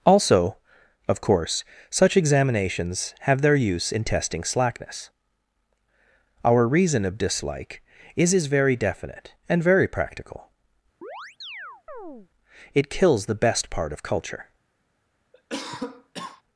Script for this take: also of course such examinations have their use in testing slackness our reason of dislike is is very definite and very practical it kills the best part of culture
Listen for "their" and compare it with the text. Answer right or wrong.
right